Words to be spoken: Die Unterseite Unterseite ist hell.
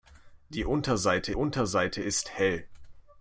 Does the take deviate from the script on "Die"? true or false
false